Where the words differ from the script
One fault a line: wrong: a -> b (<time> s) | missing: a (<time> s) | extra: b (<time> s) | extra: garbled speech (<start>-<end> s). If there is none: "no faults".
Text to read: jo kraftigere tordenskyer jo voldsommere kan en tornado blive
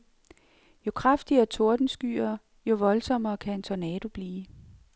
no faults